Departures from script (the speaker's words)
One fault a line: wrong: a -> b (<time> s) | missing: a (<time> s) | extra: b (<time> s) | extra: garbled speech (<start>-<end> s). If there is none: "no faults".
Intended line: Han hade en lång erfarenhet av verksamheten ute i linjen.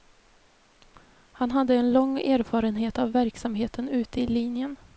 no faults